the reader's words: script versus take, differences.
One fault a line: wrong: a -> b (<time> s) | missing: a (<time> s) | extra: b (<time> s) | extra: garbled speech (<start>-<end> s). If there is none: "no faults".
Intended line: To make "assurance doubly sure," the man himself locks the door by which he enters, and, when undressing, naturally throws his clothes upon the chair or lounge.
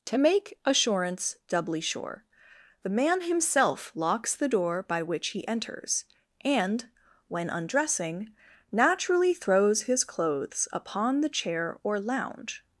no faults